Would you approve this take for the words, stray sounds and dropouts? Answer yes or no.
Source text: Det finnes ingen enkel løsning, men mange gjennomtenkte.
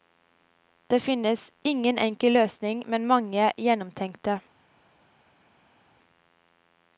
yes